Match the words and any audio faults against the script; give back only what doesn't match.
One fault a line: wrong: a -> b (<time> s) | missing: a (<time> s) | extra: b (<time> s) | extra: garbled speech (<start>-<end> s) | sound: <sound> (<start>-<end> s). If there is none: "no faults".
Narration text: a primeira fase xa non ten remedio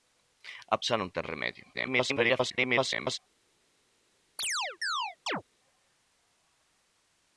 missing: primeira fase (0.8 s)
extra: garbled speech (1.7-3.2 s)
sound: chirp (4.4-5.4 s)